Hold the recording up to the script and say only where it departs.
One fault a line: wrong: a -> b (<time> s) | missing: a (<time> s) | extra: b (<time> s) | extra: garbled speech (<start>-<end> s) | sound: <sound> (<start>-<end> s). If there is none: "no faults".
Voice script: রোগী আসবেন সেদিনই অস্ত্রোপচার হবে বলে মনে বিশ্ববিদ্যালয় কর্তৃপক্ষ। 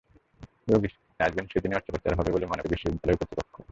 no faults